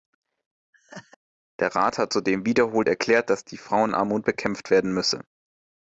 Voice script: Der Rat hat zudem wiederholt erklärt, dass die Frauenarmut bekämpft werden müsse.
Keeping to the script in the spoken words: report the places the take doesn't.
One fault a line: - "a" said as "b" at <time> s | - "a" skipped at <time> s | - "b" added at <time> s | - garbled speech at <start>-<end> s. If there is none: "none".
none